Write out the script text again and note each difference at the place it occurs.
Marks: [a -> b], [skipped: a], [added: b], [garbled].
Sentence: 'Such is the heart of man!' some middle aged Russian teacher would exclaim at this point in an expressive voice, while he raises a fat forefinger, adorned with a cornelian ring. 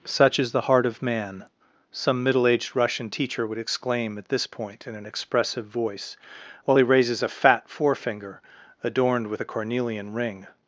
'Such is the heart of man!' some middle aged Russian teacher would exclaim at this point in an expressive voice, while he raises a fat forefinger, adorned with a cornelian ring.